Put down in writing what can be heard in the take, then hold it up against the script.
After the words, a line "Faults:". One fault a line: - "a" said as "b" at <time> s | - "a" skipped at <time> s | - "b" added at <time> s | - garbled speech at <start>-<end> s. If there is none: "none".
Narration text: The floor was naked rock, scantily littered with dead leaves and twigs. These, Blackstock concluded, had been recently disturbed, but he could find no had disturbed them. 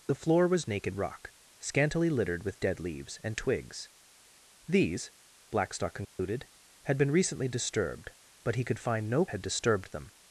The floor was naked rock, scantily littered with dead leaves and twigs. These, Blackstock concluded, had been recently disturbed, but he could find no had disturbed them.
Faults:
none